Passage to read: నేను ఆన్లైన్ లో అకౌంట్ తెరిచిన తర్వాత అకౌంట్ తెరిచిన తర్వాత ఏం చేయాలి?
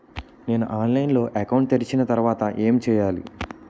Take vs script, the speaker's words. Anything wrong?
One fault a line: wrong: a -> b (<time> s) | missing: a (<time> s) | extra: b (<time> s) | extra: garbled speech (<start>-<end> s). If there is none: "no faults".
missing: అకౌంట్ తెరిచిన తర్వాత (2.5 s)